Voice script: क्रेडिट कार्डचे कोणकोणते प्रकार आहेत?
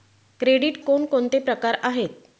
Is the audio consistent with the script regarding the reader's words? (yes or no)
no